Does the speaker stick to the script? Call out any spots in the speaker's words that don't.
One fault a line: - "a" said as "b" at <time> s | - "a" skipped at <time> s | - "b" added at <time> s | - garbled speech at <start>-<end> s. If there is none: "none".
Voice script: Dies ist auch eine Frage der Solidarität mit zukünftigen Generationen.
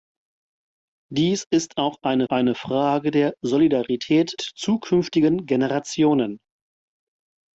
- "eine" added at 2.3 s
- "mit" skipped at 4.4 s